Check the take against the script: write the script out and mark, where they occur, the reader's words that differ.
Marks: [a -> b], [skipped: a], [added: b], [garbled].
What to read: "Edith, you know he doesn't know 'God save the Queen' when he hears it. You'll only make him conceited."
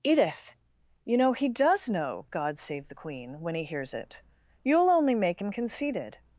"Edith, you know he [doesn't -> does] know 'God save the Queen' when he hears it. You'll only make him conceited."